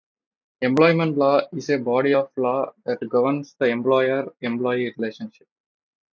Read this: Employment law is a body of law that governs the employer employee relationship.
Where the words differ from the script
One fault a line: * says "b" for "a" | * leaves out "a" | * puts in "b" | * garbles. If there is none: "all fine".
all fine